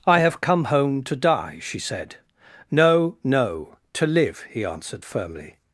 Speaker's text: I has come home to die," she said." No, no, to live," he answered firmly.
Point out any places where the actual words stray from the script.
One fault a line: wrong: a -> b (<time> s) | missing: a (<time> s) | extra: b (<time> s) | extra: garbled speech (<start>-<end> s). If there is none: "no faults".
wrong: has -> have (0.2 s)